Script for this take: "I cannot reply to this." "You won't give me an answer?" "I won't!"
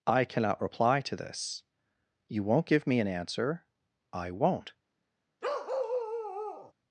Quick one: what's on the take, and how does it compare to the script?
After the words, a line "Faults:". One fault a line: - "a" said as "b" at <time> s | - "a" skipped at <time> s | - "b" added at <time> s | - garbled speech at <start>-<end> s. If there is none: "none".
"I cannot reply to this." "You won't give me an answer?" "I won't!"
Faults:
none